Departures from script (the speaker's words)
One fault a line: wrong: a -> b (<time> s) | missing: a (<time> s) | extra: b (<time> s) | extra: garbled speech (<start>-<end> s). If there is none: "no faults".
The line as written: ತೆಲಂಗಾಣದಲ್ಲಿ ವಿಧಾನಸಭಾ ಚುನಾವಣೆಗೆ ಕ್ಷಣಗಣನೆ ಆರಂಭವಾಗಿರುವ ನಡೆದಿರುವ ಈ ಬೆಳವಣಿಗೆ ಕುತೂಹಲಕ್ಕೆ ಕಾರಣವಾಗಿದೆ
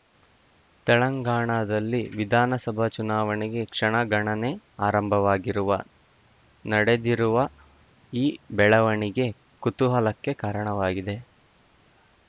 no faults